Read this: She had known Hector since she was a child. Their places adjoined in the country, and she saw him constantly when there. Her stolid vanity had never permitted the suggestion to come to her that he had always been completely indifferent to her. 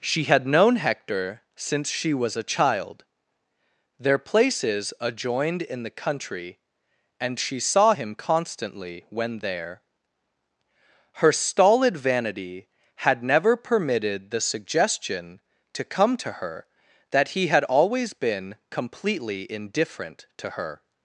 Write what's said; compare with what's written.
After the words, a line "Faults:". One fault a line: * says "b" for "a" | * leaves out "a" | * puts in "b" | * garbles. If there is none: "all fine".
She had known Hector since she was a child. Their places adjoined in the country, and she saw him constantly when there. Her stolid vanity had never permitted the suggestion to come to her that he had always been completely indifferent to her.
Faults:
all fine